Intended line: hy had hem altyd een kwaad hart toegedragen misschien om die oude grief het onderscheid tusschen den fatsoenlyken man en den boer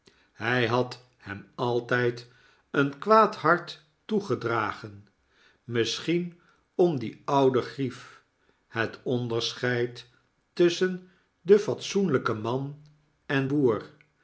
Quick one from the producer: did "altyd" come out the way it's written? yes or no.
yes